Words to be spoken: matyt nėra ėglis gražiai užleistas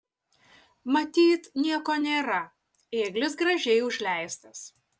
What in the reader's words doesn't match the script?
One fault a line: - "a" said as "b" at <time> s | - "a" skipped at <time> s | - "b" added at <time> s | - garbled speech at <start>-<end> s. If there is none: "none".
- "nieko" added at 1.6 s